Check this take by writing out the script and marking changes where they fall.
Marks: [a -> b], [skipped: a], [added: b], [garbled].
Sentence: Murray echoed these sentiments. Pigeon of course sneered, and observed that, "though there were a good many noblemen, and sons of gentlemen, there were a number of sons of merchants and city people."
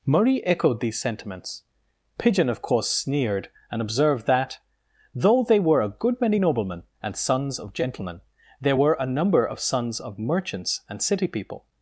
Murray echoed these sentiments. Pigeon of course sneered, and observed that, "though [there -> they] were a good many noblemen, and sons of gentlemen, there were a number of sons of merchants and city people."